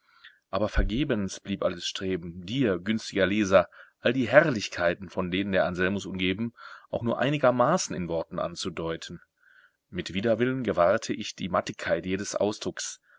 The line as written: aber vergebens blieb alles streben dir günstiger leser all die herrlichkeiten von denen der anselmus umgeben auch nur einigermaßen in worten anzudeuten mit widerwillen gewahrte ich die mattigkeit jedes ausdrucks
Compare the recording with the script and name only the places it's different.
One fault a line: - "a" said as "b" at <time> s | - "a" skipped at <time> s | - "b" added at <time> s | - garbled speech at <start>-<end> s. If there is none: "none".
none